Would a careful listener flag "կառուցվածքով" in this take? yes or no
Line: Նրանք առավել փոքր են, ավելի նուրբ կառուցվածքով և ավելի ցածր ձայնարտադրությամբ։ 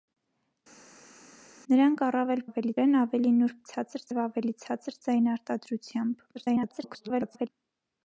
yes